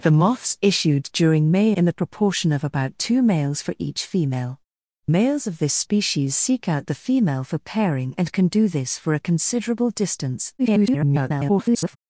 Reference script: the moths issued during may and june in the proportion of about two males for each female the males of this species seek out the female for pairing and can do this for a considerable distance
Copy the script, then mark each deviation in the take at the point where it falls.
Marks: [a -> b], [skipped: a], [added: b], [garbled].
the moths issued during may [skipped: and june] in the proportion of about two males for each female [skipped: the] males of this species seek out the female for pairing and can do this for a considerable distance [garbled]